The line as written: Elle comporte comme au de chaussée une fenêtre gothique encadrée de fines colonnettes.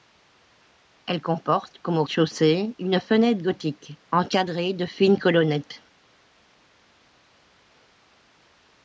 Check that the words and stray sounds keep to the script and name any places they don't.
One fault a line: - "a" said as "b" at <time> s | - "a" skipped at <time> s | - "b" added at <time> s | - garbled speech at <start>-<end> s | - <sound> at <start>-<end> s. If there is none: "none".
none